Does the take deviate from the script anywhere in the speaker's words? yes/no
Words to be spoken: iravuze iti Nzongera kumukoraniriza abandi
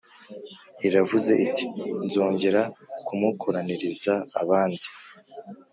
no